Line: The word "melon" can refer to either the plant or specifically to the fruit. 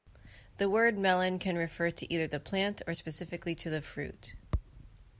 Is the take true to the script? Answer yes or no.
yes